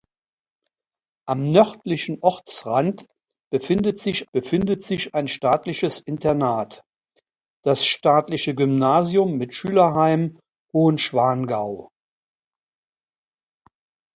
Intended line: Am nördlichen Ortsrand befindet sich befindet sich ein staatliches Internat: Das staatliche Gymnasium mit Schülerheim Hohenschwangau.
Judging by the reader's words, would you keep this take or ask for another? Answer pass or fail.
pass